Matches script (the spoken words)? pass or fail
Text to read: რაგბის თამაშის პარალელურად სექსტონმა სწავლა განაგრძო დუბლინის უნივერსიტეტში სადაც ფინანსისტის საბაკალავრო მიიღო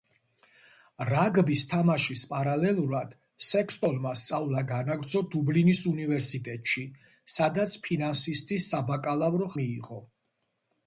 pass